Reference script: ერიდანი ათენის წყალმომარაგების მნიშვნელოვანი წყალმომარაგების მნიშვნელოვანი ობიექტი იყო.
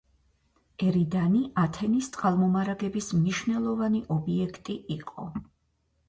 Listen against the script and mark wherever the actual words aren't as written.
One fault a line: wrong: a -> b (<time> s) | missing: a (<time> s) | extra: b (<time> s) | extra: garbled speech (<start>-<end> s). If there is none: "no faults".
missing: წყალმომარაგების მნიშვნელოვანი (4.0 s)